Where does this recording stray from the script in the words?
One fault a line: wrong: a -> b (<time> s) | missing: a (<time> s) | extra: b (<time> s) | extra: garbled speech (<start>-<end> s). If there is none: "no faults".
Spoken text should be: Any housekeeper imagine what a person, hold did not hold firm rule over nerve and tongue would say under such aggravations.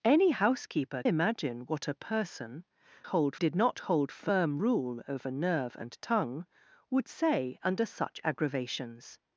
no faults